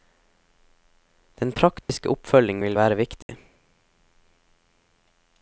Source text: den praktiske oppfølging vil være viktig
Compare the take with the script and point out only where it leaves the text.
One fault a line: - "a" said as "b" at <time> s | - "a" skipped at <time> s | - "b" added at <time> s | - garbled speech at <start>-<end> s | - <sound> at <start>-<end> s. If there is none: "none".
- dropout at 1.8-1.9 s
- dropout at 3.2-3.3 s